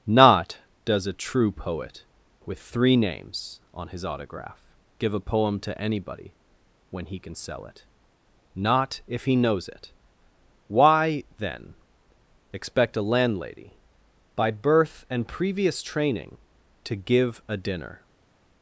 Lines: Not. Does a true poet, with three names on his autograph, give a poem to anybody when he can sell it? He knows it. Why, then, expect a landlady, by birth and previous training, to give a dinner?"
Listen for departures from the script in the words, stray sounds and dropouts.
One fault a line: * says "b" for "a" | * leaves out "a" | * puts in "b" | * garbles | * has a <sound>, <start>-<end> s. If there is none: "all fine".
* puts in "Not if"